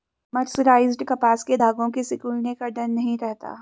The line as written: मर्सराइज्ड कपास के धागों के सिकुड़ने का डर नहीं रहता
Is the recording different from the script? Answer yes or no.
no